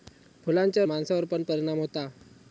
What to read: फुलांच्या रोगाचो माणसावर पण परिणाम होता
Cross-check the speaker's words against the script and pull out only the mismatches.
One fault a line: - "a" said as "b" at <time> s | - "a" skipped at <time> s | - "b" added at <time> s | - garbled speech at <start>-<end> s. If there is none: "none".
- "रोगाचो" skipped at 0.8 s